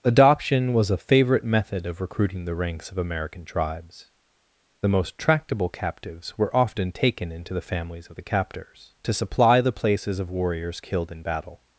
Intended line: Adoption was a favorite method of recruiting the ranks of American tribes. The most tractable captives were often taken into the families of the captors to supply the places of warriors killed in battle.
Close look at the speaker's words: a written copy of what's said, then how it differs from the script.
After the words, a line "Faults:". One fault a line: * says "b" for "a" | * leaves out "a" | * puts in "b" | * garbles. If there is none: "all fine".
Adoption was a favorite method of recruiting the ranks of American tribes. The most tractable captives were often taken into the families of the captors to supply the places of warriors killed in battle.
Faults:
all fine